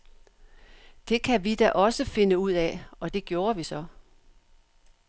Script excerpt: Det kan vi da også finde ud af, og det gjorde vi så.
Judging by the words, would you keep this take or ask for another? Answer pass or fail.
pass